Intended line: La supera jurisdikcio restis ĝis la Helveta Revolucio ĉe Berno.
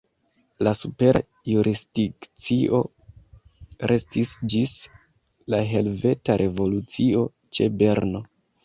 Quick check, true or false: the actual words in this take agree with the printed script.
true